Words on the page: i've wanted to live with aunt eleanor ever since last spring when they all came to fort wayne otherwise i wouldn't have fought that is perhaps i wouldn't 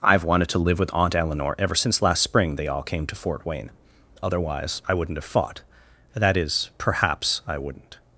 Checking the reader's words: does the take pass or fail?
fail